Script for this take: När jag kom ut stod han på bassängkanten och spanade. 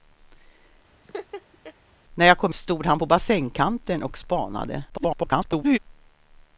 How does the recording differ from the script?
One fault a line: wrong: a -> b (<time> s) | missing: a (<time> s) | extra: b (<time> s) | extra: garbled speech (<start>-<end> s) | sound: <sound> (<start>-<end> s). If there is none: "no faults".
sound: laugh (1.0-1.7 s)
missing: ut (2.5 s)
extra: garbled speech (4.9-5.8 s)